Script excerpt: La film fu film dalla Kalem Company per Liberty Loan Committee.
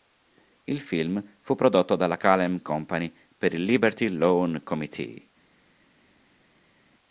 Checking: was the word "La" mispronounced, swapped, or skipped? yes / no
yes